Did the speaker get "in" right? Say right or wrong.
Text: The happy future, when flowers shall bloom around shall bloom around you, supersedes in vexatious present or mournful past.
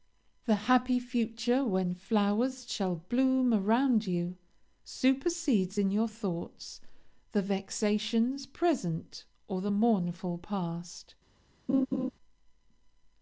wrong